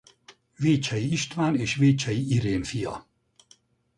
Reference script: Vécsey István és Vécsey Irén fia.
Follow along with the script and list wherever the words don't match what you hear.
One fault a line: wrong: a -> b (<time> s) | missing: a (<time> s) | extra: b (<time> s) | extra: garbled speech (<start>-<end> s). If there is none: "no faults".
no faults